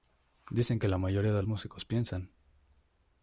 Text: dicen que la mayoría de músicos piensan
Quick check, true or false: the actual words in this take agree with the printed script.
true